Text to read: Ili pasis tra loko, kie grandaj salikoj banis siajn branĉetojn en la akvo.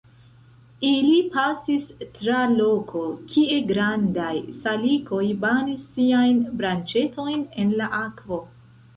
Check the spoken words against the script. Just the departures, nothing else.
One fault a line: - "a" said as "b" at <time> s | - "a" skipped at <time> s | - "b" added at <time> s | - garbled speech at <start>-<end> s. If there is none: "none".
none